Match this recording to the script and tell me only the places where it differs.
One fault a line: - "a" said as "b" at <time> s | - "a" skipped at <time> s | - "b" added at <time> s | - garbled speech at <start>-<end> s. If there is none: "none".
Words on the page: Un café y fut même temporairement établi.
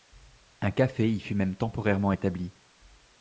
none